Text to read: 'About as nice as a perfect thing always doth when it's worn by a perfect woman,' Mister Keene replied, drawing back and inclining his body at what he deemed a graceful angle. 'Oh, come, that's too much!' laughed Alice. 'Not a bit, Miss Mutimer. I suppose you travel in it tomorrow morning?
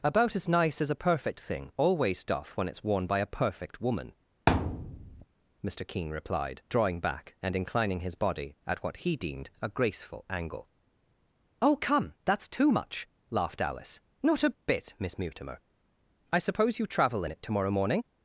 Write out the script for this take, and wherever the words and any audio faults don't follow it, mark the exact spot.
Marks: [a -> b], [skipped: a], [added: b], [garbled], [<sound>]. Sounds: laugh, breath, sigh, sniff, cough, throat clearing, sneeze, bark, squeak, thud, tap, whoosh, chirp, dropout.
'About as nice as a perfect thing always doth when it's worn by a perfect woman,' [thud] Mister Keene replied, drawing back and inclining his body at what he deemed a graceful angle. 'Oh, come, that's too much!' laughed Alice. 'Not a bit, Miss Mutimer. I suppose you travel in it tomorrow morning?